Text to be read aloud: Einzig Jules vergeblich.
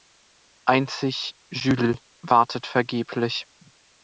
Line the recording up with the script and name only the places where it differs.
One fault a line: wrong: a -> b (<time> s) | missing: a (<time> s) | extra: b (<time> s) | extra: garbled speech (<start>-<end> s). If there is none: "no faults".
extra: wartet (2.2 s)